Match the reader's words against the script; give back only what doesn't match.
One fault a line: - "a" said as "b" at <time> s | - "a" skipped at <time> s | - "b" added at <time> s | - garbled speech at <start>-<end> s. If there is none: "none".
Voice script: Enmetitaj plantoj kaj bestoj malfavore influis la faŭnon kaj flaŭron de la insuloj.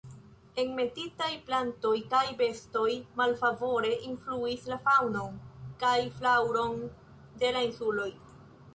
none